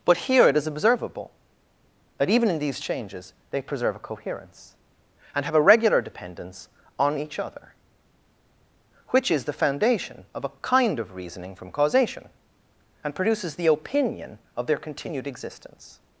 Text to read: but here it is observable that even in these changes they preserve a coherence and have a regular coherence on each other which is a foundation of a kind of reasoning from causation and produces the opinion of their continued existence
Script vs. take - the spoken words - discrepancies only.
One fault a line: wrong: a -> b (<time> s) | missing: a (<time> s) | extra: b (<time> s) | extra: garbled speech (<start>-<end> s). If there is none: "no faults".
wrong: coherence -> dependence (6.0 s)
wrong: a -> the (9.4 s)